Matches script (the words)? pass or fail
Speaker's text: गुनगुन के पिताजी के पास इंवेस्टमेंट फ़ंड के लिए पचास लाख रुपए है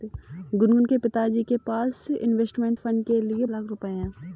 fail